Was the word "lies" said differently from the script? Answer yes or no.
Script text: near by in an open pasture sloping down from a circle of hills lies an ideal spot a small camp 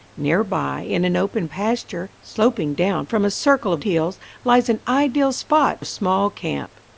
no